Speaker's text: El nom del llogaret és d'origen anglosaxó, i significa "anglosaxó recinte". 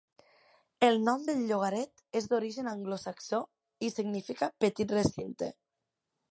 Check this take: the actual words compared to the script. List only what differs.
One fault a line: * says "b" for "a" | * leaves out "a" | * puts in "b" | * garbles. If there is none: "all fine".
* says "petit" for "anglosaxó"